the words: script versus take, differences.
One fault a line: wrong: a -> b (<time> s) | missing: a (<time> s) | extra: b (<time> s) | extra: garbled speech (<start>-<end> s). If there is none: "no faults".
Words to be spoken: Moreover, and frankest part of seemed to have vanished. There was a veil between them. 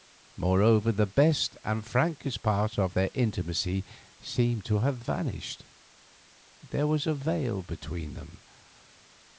extra: the best (0.9 s)
extra: their intimacy (3.0 s)